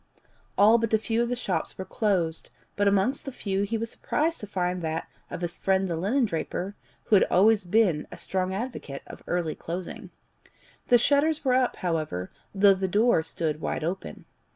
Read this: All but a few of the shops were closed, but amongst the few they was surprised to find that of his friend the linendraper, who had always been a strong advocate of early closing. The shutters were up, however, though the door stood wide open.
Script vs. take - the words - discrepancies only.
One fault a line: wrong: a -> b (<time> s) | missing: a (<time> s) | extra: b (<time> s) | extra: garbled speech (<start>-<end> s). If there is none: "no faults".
wrong: they -> he (3.6 s)